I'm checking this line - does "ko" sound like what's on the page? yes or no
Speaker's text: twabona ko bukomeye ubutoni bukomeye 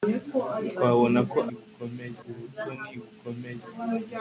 yes